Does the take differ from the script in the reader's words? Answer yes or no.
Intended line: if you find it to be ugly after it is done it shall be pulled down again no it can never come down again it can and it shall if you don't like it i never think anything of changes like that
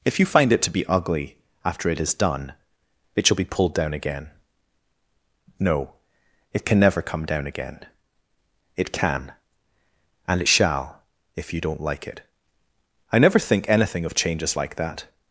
no